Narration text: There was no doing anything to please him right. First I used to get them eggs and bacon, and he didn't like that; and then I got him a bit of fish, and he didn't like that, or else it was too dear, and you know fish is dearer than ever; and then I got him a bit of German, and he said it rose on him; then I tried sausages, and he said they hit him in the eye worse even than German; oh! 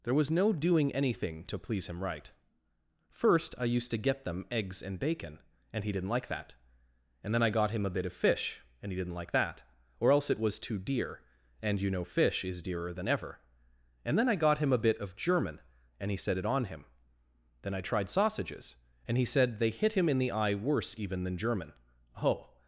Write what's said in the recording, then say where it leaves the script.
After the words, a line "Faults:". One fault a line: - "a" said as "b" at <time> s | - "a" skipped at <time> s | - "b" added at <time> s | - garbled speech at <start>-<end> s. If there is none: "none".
There was no doing anything to please him right. First I used to get them eggs and bacon, and he didn't like that; and then I got him a bit of fish, and he didn't like that, or else it was too dear, and you know fish is dearer than ever; and then I got him a bit of German, and he said it on him; then I tried sausages, and he said they hit him in the eye worse even than German; oh!
Faults:
- "rose" skipped at 16.4 s